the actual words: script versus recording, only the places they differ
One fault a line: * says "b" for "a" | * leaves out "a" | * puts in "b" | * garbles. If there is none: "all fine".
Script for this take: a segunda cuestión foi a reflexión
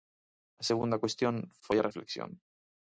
all fine